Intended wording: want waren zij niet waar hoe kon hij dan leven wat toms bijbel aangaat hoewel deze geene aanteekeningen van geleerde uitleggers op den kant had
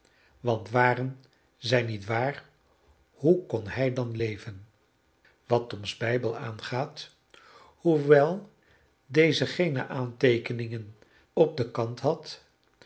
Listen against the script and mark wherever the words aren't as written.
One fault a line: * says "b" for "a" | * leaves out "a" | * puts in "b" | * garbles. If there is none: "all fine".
* leaves out "van geleerde uitleggers"